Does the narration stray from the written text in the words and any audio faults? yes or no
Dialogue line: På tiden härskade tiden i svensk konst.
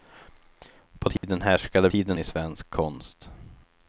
yes